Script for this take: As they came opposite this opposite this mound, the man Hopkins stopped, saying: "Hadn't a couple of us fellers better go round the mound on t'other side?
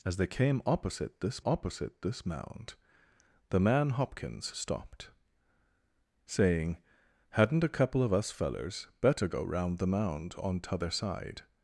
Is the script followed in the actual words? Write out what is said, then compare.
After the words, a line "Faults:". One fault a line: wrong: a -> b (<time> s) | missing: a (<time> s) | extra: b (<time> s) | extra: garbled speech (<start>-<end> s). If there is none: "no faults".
As they came opposite this opposite this mound, the man Hopkins stopped, saying: "Hadn't a couple of us fellers better go round the mound on t'other side?
Faults:
no faults